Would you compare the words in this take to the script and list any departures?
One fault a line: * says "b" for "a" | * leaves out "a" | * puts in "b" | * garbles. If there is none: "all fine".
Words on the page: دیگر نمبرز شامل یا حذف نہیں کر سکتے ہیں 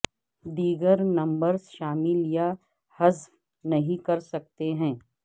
all fine